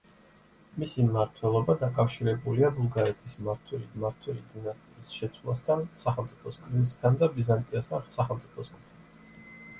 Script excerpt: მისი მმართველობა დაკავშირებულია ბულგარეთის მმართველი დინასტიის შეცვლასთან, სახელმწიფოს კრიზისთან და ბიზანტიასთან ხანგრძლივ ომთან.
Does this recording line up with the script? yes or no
no